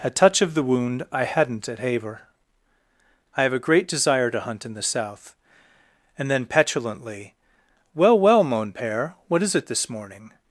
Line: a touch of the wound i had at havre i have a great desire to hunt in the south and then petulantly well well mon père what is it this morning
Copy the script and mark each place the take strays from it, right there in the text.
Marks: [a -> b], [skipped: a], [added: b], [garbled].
a touch of the wound i [had -> hadn't] at havre i have a great desire to hunt in the south and then petulantly well well mon père what is it this morning